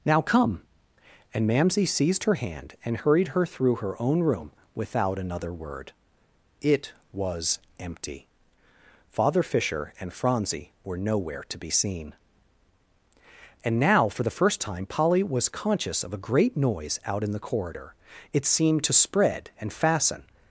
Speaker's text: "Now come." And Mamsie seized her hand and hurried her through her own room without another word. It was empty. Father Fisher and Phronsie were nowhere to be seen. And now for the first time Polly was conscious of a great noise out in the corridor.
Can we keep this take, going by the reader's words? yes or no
no